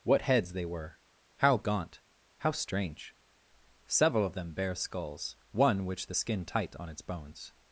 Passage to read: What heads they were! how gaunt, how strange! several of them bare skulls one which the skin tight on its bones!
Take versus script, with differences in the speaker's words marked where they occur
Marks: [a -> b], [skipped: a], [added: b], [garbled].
What heads they were! how gaunt, how strange! several of them bare skulls one which the skin tight on its bones!